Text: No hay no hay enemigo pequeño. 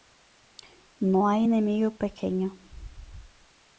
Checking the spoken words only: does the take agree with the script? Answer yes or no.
no